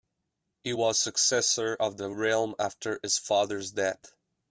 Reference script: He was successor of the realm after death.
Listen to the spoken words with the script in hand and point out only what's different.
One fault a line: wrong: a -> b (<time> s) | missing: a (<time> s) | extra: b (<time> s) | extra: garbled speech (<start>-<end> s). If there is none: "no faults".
extra: his father's (3.0 s)